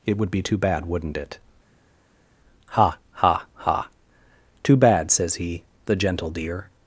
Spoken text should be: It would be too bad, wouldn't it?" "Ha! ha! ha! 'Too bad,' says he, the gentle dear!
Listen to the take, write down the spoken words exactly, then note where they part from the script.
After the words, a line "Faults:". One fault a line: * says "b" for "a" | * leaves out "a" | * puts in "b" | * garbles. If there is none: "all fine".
It would be too bad, wouldn't it?" "Ha! ha! ha! 'Too bad,' says he, the gentle dear!
Faults:
all fine